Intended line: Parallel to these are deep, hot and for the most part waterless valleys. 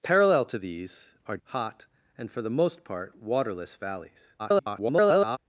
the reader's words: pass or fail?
fail